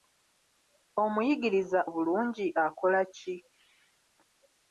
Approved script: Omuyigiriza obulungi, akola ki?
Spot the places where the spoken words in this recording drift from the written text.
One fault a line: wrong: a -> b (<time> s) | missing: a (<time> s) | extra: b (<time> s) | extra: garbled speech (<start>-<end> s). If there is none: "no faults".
no faults